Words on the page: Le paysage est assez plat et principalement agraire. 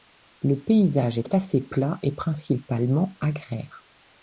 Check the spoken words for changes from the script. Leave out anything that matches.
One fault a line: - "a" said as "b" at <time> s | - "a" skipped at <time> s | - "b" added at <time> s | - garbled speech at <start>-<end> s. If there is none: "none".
- "est" added at 1.2 s